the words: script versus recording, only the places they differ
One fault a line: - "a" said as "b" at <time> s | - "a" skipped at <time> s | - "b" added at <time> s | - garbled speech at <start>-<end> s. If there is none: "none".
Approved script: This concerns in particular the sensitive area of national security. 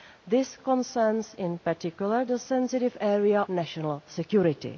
- "of" skipped at 3.5 s